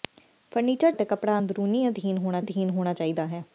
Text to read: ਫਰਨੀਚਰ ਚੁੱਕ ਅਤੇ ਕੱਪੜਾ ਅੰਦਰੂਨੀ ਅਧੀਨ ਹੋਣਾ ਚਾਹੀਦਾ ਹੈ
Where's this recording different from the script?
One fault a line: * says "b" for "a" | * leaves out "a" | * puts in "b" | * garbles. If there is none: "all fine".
* leaves out "ਚੁੱਕ"
* puts in "ਅਧੀਨ ਹੋਣਾ"